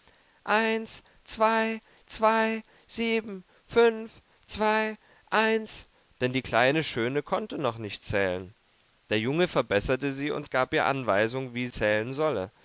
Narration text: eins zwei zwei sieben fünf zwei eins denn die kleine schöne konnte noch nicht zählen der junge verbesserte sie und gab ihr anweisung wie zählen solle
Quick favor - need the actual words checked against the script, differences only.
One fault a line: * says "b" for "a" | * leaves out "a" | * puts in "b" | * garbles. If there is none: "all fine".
all fine